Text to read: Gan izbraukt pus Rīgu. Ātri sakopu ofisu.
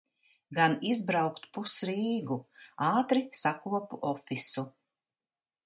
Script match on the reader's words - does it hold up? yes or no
yes